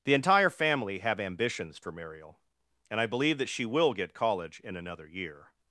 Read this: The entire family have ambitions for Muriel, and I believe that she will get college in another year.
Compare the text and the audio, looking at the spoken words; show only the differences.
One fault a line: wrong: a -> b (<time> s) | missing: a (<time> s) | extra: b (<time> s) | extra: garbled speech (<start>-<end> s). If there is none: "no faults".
no faults